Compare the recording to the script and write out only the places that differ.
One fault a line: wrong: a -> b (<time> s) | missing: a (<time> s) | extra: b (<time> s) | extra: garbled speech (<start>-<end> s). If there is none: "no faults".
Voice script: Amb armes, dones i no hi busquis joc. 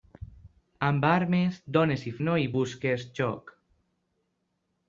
no faults